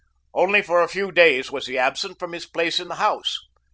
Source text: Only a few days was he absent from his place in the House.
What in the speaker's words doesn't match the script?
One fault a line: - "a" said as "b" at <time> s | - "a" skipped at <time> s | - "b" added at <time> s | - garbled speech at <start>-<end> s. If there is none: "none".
- "for" added at 0.6 s